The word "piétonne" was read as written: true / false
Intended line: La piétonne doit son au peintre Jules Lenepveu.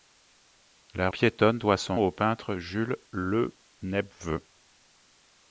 true